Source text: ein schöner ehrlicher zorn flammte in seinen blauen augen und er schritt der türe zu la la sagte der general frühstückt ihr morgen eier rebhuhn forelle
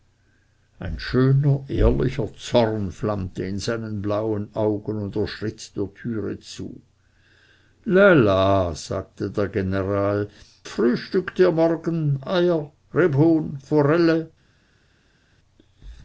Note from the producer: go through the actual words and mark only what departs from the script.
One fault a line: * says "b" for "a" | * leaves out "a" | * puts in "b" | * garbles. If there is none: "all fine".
all fine